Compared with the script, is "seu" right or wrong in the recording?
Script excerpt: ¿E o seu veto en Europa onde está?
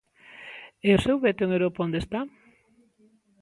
right